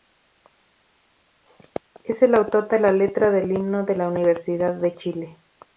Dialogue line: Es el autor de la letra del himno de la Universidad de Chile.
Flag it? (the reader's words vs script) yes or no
no